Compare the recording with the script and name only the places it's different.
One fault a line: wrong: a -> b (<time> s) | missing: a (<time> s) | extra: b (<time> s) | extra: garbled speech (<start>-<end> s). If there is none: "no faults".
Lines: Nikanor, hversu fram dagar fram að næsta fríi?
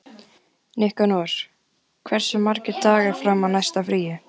wrong: fram -> margir (2.5 s)